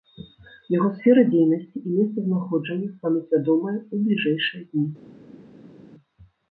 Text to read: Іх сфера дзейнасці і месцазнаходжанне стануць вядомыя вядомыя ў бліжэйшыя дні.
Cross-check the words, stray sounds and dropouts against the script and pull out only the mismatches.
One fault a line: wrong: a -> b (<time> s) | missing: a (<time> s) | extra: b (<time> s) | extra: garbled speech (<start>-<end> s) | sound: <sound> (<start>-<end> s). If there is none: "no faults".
wrong: Іх -> Яго (0.8 s)
missing: вядомыя (3.8 s)